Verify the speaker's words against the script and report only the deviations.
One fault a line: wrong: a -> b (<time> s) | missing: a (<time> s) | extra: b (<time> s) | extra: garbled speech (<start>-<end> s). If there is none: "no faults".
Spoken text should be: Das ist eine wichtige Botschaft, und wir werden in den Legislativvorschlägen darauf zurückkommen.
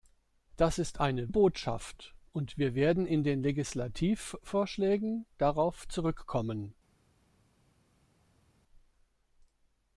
missing: wichtige (1.3 s)